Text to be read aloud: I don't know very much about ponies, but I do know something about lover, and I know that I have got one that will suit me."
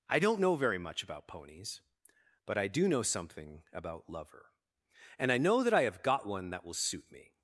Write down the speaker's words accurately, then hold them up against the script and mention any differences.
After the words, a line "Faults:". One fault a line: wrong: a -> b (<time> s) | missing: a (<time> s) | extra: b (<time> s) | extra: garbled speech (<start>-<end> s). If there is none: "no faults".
I don't know very much about ponies, but I do know something about lover, and I know that I have got one that will suit me."
Faults:
no faults